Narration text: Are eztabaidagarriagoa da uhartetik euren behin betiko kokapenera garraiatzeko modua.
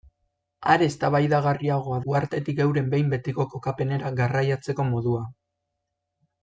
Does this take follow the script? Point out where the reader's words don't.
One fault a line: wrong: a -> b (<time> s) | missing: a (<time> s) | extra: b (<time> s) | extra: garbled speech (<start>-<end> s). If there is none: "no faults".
missing: da (2.0 s)